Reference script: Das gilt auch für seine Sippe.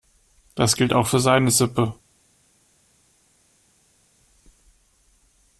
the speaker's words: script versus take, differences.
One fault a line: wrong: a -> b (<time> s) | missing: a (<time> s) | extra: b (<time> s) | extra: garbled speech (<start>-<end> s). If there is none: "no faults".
no faults